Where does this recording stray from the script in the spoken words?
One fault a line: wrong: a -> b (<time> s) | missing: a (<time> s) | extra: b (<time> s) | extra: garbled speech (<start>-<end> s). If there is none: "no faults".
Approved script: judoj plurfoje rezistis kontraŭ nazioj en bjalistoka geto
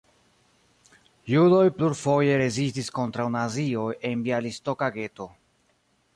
no faults